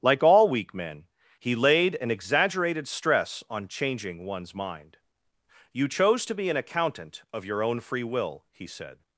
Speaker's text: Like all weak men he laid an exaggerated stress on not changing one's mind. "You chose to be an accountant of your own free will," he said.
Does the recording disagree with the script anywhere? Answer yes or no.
yes